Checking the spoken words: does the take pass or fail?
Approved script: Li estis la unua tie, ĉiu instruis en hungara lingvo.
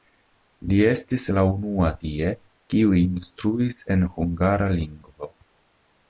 fail